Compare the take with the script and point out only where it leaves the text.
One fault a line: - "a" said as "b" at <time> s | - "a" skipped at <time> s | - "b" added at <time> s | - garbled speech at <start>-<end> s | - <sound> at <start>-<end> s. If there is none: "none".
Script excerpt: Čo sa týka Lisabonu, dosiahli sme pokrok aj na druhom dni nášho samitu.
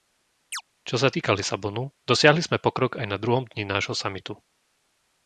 - chirp at 0.5-0.6 s